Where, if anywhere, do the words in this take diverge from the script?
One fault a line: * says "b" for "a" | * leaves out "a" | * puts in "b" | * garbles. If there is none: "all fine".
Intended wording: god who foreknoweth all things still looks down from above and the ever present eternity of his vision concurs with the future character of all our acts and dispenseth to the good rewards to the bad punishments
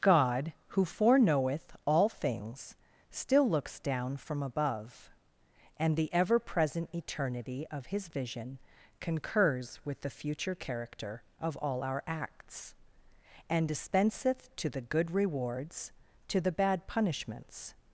all fine